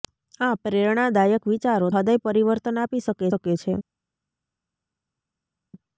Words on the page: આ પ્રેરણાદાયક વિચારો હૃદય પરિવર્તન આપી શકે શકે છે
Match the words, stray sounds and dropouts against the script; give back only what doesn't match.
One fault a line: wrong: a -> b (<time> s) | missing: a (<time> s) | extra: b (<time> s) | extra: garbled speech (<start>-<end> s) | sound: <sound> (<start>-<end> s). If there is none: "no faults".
no faults